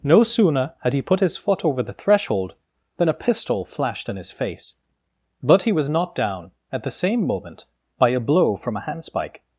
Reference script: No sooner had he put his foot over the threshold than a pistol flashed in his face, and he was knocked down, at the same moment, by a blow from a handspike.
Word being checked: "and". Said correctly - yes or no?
no